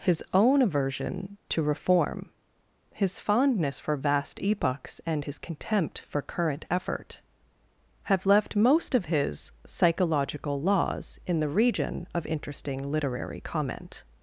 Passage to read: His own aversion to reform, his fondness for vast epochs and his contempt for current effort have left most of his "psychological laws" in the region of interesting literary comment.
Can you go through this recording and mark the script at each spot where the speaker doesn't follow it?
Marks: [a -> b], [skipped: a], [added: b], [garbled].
His own aversion to reform, his fondness for vast epochs and his contempt for current effort have left most of his "psychological laws" in the region of interesting literary comment.